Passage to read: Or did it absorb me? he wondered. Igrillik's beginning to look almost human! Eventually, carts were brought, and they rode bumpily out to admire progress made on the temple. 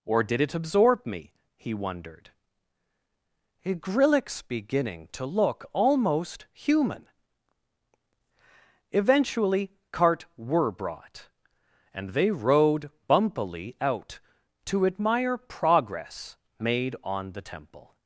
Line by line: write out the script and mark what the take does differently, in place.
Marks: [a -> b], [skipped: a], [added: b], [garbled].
Or did it absorb me? he wondered. Igrillik's beginning to look almost human! Eventually, [carts -> cart] were brought, and they rode bumpily out to admire progress made on the temple.